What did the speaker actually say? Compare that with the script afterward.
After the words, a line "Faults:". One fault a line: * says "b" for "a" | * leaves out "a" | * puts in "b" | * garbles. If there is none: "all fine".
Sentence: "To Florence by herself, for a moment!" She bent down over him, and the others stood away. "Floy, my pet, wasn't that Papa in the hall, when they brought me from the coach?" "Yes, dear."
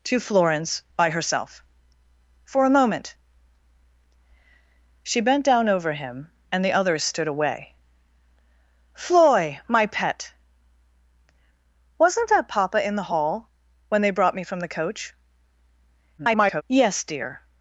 "To Florence by herself, for a moment!" She bent down over him, and the others stood away. "Floy, my pet, wasn't that Papa in the hall, when they brought me from the coach?" [garbled] "Yes, dear."
Faults:
* garbles